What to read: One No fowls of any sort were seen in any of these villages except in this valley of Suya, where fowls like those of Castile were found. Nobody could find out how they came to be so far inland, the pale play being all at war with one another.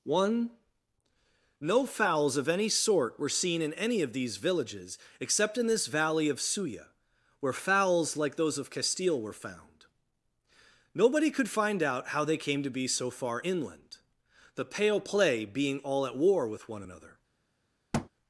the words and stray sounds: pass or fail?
fail